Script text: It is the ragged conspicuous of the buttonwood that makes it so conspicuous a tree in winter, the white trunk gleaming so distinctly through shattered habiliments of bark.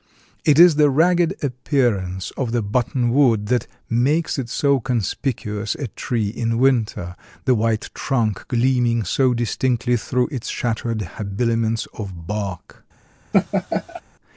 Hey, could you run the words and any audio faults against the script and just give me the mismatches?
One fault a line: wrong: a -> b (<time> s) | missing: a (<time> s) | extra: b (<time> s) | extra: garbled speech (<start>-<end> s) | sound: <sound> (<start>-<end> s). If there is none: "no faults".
wrong: conspicuous -> appearance (1.4 s)
extra: its (10.3 s)
sound: laugh (13.3-14.0 s)